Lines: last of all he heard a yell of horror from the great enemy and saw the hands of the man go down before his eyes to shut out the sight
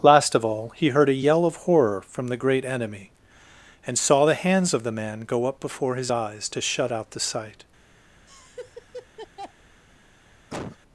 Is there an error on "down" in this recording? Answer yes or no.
yes